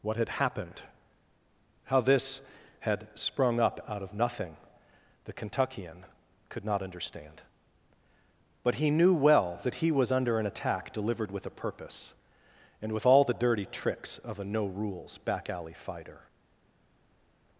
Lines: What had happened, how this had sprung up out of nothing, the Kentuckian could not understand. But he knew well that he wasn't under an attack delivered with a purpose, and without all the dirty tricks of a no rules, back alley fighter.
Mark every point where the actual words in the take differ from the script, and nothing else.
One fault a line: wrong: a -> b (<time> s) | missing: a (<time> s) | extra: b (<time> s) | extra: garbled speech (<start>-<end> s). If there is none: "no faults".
wrong: wasn't -> was (9.9 s)
wrong: without -> with (12.9 s)